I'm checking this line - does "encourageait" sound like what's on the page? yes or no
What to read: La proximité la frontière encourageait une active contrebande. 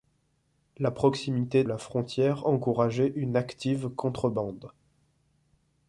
yes